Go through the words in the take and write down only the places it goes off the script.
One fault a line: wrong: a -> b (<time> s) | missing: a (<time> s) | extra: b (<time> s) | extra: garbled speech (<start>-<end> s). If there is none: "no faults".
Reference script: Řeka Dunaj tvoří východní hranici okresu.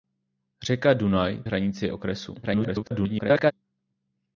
missing: tvoří východní (1.4 s)
extra: garbled speech (2.4-3.5 s)